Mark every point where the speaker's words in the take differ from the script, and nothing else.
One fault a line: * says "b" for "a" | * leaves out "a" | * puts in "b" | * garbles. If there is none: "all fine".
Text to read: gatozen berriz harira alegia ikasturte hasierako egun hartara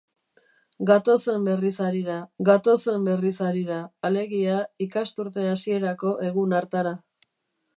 * puts in "gatozen berriz harira"